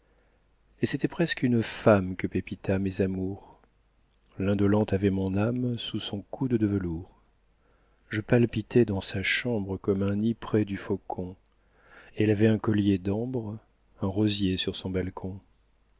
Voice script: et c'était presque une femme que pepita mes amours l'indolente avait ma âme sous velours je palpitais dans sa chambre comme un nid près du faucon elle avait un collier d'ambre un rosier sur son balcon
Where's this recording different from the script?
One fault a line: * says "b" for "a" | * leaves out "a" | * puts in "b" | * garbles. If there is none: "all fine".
* says "mon" for "ma"
* puts in "son coude de"